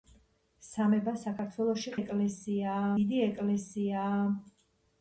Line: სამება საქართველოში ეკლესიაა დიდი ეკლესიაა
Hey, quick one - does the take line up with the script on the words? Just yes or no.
yes